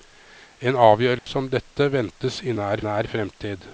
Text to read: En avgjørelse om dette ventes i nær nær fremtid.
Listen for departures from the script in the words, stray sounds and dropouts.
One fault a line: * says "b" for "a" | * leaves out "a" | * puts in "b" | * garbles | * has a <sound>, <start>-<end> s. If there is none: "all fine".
* has a dropout, 1.2-1.3 s